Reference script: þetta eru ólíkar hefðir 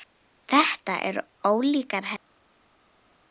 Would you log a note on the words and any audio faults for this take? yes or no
no